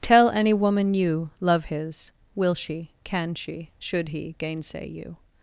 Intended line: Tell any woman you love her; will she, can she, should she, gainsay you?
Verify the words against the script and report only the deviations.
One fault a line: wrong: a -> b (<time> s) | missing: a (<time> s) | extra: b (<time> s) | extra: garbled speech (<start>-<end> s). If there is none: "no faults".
wrong: her -> his (1.6 s)
wrong: she -> he (4.1 s)